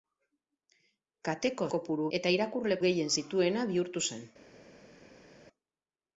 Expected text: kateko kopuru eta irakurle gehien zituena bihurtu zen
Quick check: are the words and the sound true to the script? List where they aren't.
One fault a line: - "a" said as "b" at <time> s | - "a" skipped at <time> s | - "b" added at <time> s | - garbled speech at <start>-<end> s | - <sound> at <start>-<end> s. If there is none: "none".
none